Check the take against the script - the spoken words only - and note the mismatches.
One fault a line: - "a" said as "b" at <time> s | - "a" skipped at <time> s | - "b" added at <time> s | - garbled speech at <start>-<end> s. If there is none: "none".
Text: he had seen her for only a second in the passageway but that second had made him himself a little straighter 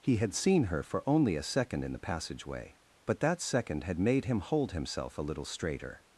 - "hold" added at 4.4 s